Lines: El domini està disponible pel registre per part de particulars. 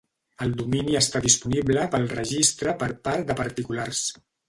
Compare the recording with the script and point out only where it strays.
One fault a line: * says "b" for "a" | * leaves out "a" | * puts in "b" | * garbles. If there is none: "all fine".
all fine